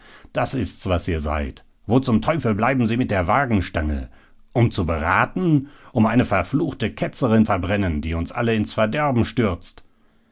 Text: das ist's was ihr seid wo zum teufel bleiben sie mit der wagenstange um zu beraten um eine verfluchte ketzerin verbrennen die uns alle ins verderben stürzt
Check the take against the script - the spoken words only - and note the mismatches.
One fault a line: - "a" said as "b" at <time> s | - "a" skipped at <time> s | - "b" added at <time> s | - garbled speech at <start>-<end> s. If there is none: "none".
none